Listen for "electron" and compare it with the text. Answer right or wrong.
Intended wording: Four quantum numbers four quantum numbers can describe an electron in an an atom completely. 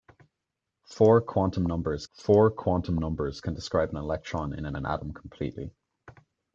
right